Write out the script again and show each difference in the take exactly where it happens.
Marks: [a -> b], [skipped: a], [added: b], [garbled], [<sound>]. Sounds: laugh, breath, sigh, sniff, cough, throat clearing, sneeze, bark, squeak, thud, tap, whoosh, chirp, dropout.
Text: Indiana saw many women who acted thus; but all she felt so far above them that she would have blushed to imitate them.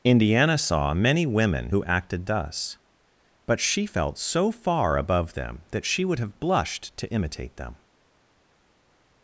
Indiana saw many women who acted thus; but [skipped: all] she felt so far above them that she would have blushed to imitate them.